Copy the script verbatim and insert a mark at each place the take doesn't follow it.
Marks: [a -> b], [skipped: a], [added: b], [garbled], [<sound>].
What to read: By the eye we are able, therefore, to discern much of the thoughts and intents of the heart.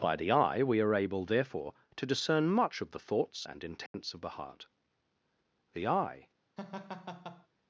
By the eye we are able, therefore, to discern much of the thoughts and intents [dropout] of the heart. [added: The eye] [laugh]